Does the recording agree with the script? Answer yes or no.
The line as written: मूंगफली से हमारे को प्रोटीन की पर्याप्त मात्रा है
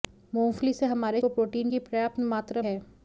yes